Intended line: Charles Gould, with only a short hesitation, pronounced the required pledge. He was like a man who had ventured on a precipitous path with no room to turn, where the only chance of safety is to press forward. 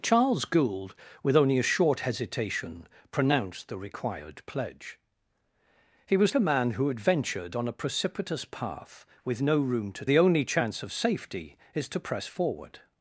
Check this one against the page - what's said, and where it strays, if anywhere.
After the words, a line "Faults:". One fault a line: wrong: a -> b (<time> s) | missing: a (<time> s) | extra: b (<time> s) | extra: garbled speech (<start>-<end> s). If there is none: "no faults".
Charles Gould, with only a short hesitation, pronounced the required pledge. He was a man who had ventured on a precipitous path with no room to the only chance of safety is to press forward.
Faults:
missing: like (6.3 s)
missing: turn where (10.0 s)